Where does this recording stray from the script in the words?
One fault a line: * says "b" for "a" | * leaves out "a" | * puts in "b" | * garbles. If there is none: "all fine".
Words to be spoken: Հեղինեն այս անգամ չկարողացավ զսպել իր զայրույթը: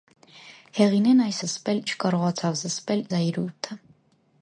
* says "զսպել" for "անգամ"
* leaves out "իր"